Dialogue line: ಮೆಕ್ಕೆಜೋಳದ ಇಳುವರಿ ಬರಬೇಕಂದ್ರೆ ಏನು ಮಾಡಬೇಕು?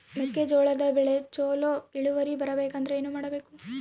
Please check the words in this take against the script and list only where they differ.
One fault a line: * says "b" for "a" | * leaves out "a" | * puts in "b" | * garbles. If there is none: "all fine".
* puts in "ಬೆಳೆ ಚೊಲೊ"